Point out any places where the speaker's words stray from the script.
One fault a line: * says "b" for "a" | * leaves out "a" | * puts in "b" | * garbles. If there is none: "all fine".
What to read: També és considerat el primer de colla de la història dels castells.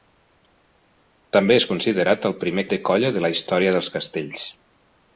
all fine